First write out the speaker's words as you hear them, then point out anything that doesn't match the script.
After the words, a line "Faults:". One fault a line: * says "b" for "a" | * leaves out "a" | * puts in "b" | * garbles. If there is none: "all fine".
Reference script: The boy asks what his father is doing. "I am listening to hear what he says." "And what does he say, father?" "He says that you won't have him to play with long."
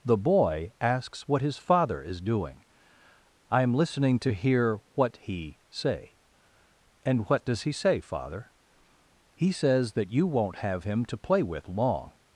The boy asks what his father is doing. "I am listening to hear what he say." "And what does he say, father?" "He says that you won't have him to play with long."
Faults:
* says "say" for "says"